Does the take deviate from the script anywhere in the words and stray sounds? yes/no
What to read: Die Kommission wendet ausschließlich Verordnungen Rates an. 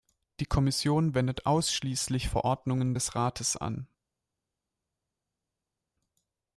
yes